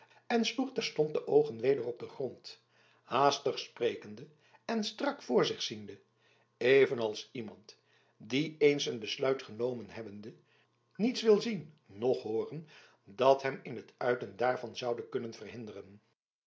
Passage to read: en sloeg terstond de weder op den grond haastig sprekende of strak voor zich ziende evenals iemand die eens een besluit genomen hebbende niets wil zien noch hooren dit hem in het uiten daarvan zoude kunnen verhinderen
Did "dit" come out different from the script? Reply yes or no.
yes